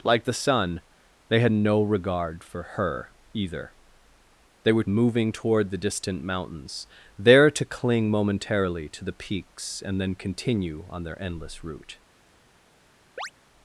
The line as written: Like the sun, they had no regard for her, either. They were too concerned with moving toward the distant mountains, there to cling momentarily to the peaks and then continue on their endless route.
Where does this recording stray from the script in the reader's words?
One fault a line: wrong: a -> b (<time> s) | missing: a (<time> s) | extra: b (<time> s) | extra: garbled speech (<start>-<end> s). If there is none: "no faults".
missing: too concerned with (4.8 s)